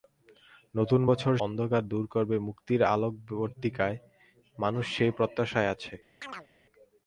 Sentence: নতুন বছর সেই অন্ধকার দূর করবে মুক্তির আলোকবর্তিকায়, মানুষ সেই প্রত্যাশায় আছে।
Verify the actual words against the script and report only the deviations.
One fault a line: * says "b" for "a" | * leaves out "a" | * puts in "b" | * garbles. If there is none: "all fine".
* leaves out "সেই"